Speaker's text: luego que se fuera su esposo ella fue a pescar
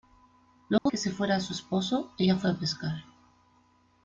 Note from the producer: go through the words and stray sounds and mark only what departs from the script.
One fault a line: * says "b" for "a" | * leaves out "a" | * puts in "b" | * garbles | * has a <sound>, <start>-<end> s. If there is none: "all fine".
* has a dropout, 0.8-0.9 s